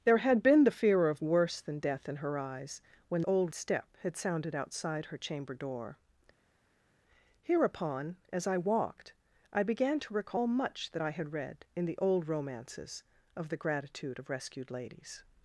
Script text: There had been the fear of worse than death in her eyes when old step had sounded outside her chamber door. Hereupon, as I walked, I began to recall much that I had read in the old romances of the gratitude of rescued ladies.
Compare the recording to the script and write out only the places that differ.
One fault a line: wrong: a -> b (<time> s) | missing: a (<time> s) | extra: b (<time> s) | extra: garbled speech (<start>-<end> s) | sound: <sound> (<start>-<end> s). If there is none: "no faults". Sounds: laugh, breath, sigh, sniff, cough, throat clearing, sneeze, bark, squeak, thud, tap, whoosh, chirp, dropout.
no faults